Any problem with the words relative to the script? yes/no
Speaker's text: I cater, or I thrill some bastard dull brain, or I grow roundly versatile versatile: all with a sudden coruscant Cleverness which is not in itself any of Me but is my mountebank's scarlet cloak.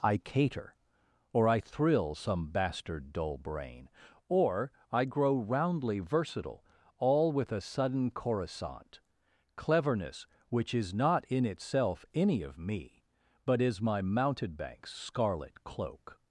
yes